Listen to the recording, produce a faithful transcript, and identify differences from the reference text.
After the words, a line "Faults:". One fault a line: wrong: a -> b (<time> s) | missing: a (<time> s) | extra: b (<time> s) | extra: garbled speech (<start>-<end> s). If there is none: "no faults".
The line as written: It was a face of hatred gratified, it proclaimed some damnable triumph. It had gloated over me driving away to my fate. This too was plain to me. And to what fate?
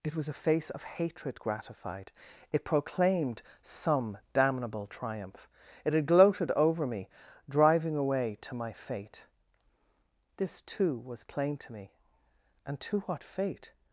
It was a face of hatred gratified, it proclaimed some damnable triumph. It had gloated over me driving away to my fate. This too was plain to me. And to what fate?
Faults:
no faults